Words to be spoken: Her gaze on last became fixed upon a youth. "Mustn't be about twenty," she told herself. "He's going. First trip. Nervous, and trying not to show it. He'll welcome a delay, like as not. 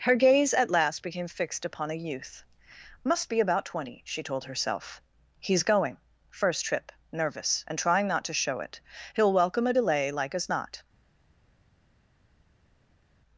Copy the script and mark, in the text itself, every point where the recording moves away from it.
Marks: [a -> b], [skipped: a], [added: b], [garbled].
Her gaze [on -> at] last became fixed upon a youth. ["Mustn't -> Must] be about twenty," she told herself. "He's going. First trip. Nervous, and trying not to show it. He'll welcome a delay, like as not.